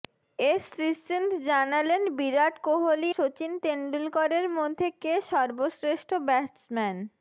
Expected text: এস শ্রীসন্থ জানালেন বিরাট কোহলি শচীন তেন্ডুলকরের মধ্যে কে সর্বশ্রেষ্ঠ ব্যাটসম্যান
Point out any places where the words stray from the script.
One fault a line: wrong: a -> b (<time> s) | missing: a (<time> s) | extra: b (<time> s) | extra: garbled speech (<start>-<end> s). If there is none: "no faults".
no faults